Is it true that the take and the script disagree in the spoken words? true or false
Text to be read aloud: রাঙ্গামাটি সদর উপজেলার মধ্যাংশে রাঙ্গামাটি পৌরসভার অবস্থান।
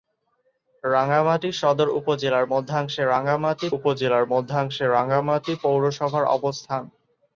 true